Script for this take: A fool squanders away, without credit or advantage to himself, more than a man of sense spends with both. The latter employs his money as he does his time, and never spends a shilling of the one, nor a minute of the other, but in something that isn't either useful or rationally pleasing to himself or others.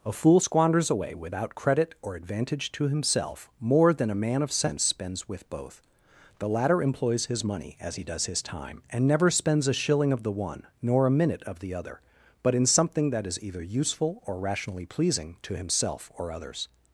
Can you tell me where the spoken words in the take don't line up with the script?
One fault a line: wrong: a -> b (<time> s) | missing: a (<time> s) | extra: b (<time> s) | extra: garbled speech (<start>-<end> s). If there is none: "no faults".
wrong: isn't -> is (13.3 s)